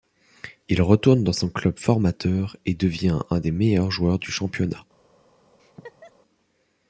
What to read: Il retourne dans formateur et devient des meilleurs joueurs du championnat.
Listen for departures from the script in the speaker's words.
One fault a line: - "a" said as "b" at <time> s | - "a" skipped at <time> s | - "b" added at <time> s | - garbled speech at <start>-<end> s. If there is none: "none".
- "son club" added at 1.3 s
- "un" added at 3.3 s